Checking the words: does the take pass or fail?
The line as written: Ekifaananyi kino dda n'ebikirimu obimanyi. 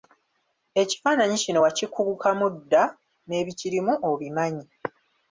fail